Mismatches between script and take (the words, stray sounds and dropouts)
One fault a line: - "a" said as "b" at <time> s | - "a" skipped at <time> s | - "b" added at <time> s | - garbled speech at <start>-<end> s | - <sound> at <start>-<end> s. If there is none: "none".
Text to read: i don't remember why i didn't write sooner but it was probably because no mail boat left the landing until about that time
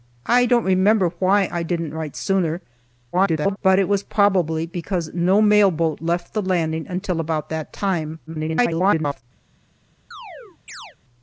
- garbled speech at 3.1-3.6 s
- garbled speech at 8.3-9.2 s
- chirp at 10.1-11.0 s